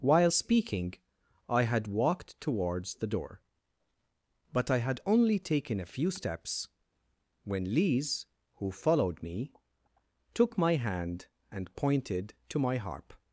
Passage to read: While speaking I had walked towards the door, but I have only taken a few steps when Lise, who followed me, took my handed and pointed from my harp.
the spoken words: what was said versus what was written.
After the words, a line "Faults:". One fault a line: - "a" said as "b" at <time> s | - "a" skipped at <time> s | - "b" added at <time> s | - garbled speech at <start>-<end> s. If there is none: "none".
While speaking I had walked towards the door, but I had only taken a few steps when Lise, who followed me, took my hand and pointed to my harp.
Faults:
- "have" said as "had" at 4.8 s
- "handed" said as "hand" at 10.8 s
- "from" said as "to" at 12.5 s